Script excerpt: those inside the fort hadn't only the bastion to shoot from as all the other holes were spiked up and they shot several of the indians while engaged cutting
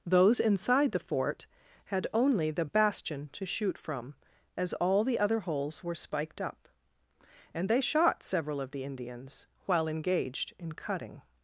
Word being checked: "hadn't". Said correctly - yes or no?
no